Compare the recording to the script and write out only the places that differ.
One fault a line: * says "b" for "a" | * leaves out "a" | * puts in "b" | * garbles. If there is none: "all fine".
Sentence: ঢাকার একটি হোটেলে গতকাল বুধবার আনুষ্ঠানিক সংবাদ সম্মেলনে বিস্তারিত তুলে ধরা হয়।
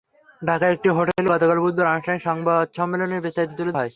* leaves out "ধরা"